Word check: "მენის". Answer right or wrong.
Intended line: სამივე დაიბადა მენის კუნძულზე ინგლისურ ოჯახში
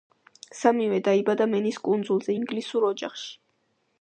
right